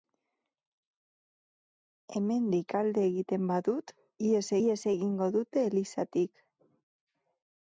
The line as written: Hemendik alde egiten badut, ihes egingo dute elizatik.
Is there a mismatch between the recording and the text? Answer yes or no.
yes